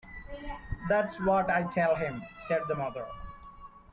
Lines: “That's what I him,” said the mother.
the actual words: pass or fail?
fail